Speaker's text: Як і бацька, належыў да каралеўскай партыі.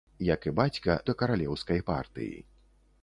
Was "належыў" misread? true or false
true